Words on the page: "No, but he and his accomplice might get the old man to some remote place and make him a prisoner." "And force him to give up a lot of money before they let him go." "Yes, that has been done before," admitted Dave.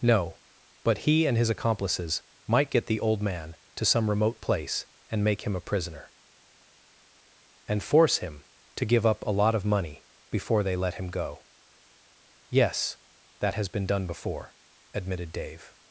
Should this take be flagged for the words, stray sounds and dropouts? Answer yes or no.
yes